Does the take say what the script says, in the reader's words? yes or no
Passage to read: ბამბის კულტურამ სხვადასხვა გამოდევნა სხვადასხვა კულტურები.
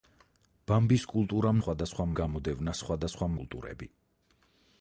yes